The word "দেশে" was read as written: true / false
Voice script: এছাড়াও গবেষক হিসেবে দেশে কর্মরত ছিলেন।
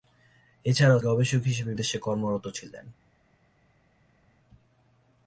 true